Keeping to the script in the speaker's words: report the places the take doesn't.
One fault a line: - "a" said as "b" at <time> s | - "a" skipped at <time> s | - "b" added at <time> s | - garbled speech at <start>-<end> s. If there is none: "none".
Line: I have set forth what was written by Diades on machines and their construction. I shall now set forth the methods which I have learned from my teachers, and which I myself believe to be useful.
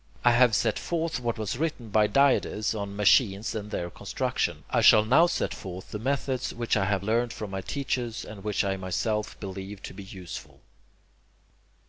none